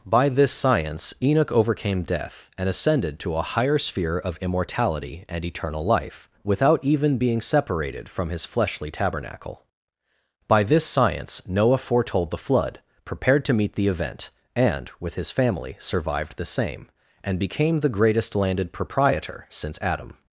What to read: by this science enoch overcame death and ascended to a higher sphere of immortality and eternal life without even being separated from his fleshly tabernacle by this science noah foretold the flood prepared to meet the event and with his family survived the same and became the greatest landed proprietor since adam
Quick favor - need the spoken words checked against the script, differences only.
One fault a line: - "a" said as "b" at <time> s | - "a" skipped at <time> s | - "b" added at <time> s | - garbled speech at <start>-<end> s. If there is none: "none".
none